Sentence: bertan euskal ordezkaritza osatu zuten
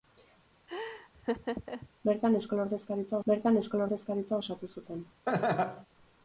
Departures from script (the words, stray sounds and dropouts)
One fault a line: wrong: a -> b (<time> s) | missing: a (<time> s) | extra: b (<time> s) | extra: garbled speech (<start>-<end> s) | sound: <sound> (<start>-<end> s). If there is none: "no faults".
sound: laugh (0.7-1.9 s)
extra: bertan euskal ordezkaritza (3.3 s)
sound: laugh (5.3-5.9 s)